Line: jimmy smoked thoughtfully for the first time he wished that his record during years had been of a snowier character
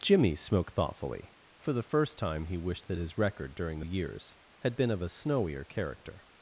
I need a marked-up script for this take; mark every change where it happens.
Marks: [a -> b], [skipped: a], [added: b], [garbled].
jimmy smoked thoughtfully for the first time he wished that his record during years had been of a snowier character